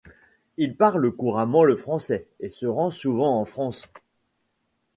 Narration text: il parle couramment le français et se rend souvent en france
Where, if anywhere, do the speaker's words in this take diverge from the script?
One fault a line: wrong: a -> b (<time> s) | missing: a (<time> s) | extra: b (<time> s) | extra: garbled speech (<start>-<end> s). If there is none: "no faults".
no faults